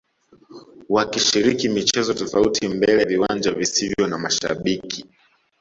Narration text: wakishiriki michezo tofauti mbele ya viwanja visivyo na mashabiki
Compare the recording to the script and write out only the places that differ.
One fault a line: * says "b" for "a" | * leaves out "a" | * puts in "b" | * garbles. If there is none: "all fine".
* leaves out "ya"